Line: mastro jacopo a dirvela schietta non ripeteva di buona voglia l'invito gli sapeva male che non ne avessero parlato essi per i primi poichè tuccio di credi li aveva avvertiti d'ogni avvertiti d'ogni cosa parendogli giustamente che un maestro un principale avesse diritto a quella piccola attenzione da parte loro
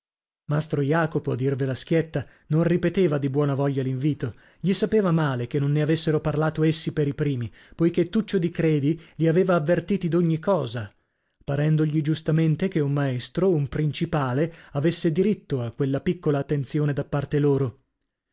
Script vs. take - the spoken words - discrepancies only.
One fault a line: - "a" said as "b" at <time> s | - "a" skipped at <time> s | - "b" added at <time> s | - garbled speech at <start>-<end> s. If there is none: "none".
- "avvertiti d'ogni" skipped at 10.4 s